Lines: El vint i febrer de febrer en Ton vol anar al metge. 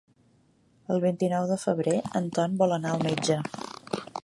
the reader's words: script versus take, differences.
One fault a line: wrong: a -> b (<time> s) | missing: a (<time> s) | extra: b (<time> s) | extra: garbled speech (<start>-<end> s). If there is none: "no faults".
wrong: febrer -> nou (1.3 s)